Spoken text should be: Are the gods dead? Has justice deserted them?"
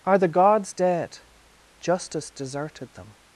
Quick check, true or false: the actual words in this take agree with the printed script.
false